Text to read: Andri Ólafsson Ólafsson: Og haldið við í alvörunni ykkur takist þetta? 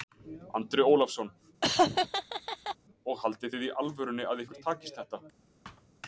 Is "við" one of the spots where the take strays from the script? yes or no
yes